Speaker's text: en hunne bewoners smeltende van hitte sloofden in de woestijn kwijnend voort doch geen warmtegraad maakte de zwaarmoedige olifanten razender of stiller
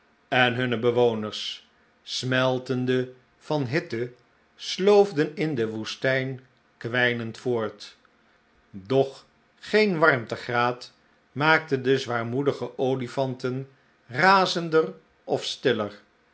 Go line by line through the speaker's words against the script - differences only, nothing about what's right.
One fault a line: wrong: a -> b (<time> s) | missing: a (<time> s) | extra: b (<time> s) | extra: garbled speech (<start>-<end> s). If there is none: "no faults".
no faults